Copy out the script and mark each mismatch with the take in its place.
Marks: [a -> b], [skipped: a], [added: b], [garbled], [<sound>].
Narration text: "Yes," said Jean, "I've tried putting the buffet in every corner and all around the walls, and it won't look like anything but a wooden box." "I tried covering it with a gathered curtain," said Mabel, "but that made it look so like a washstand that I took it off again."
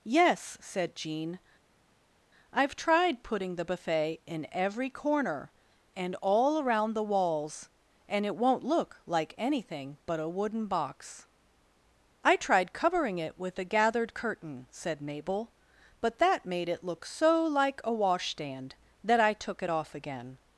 "Yes," said Jean, "I've tried putting the buffet in every corner and all around the walls, and it won't look like anything but a wooden box." "I tried covering it with a gathered curtain," said Mabel, "but that made it look so like a washstand that I took it off again."